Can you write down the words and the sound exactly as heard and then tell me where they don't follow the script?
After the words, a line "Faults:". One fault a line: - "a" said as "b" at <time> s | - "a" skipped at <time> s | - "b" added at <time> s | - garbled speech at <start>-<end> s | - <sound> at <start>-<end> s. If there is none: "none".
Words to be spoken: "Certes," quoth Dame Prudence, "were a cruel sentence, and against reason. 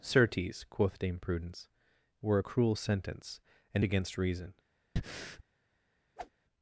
"Certes," quoth Dame Prudence, "were a cruel sentence, and against reason.
Faults:
- breath at 5.0-5.4 s
- whoosh at 6.2-6.3 s